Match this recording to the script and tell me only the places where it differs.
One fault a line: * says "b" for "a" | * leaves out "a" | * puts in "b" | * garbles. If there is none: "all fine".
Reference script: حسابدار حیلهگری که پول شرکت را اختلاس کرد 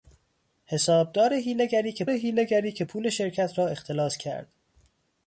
* puts in "حیلهگری که"